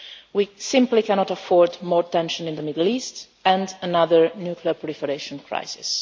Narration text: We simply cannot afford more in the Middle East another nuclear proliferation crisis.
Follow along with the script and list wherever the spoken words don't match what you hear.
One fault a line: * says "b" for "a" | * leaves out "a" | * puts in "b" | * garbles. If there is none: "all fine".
* puts in "tension"
* puts in "and"